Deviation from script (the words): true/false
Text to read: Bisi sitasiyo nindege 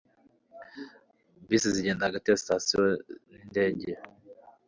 true